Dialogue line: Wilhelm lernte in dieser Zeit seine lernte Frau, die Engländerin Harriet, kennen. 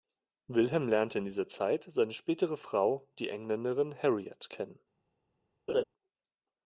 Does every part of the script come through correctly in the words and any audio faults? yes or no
no